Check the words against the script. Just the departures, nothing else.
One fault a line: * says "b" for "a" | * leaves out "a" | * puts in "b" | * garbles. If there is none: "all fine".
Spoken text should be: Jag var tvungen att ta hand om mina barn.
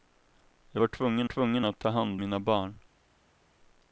* puts in "tvungen"
* leaves out "om"